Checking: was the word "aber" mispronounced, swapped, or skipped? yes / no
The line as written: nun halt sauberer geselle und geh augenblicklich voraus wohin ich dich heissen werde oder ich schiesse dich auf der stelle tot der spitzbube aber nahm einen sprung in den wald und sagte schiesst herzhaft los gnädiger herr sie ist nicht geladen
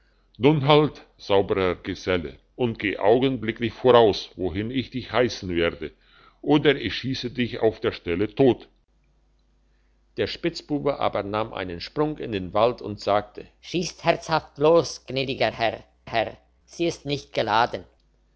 no